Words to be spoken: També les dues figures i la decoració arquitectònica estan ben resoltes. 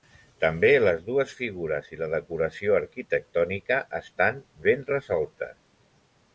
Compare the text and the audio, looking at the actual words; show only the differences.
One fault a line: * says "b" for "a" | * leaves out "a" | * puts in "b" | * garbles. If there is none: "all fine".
all fine